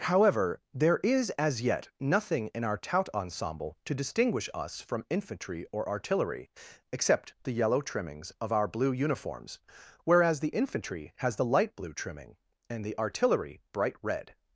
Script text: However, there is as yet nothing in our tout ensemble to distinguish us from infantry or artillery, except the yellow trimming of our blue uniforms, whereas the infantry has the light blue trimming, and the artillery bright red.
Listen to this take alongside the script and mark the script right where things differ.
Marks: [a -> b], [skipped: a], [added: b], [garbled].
However, there is as yet nothing in our tout ensemble to distinguish us from infantry or artillery, except the yellow [trimming -> trimmings] of our blue uniforms, whereas the infantry has the light blue trimming, and the artillery bright red.